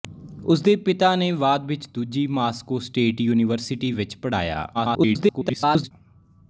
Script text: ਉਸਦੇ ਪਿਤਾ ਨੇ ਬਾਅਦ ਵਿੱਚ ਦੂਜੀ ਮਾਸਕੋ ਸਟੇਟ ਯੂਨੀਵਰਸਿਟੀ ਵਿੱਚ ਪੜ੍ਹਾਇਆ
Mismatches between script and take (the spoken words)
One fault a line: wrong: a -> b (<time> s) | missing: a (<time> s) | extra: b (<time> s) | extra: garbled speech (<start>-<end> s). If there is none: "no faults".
extra: garbled speech (4.7-5.9 s)